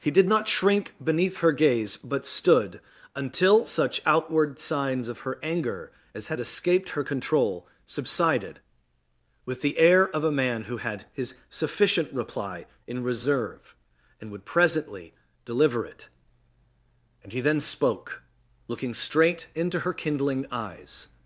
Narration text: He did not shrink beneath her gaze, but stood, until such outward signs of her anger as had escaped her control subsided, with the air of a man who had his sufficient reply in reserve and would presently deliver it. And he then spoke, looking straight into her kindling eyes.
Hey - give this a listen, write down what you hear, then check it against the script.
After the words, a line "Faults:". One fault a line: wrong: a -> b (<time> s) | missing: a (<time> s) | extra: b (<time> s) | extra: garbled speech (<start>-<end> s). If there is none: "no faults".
He did not shrink beneath her gaze, but stood, until such outward signs of her anger as had escaped her control subsided, with the air of a man who had his sufficient reply in reserve and would presently deliver it. And he then spoke, looking straight into her kindling eyes.
Faults:
no faults